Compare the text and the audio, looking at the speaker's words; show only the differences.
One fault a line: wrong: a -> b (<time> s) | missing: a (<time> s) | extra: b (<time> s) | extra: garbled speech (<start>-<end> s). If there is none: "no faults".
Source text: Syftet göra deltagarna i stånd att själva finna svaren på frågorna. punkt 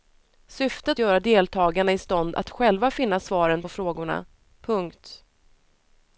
no faults